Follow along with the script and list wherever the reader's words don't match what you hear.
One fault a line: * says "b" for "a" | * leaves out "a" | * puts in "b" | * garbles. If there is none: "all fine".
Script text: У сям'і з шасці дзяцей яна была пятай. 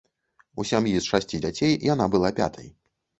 all fine